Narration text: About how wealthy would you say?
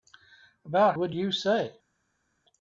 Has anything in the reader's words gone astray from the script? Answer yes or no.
yes